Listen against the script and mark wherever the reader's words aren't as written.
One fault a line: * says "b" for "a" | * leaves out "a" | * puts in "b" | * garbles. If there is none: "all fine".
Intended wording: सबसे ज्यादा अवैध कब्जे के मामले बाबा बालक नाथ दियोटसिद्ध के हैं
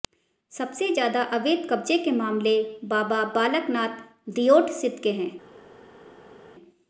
all fine